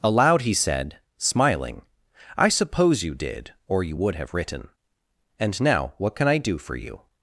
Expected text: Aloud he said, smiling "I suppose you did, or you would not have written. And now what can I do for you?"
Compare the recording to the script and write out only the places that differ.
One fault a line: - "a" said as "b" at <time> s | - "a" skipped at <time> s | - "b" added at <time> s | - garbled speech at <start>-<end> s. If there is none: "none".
- "not" skipped at 4.1 s